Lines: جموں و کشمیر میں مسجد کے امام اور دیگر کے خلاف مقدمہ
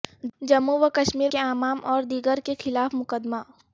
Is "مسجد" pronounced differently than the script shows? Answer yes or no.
yes